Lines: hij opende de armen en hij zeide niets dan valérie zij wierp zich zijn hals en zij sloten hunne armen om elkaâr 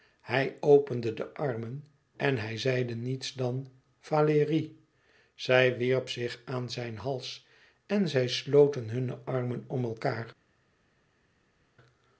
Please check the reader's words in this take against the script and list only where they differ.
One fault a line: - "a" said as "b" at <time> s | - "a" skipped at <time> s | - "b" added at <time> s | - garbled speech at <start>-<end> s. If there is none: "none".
- "aan" added at 6.4 s